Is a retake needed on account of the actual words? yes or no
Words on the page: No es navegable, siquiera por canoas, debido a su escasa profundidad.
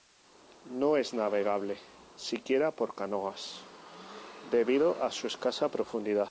no